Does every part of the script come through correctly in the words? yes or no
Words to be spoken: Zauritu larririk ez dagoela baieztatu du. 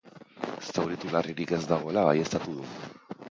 yes